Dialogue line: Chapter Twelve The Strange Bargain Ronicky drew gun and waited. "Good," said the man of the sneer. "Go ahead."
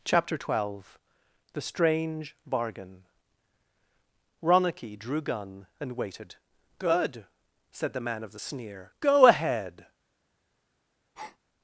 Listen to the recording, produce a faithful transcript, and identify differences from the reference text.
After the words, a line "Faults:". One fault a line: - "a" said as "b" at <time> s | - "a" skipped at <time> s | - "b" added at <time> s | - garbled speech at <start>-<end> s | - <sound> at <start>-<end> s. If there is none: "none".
Chapter Twelve The Strange Bargain Ronicky drew gun and waited. "Good," said the man of the sneer. "Go ahead."
Faults:
- breath at 11.1-11.4 s